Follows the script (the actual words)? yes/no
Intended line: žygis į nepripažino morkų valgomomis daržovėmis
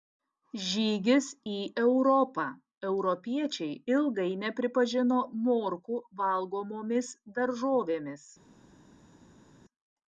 no